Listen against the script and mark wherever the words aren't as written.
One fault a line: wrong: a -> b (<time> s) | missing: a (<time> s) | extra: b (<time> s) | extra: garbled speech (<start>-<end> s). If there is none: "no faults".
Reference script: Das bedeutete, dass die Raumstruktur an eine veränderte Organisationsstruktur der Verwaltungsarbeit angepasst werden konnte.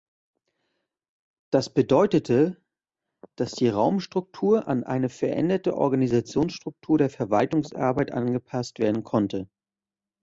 no faults